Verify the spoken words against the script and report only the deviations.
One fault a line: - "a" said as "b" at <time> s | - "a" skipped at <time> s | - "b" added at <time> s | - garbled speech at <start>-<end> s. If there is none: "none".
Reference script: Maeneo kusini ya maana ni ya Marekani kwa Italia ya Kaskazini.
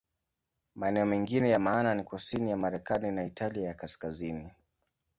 - "kusini" said as "mengine" at 1.1 s
- "kusini" added at 2.0 s
- "kwa" said as "na" at 3.1 s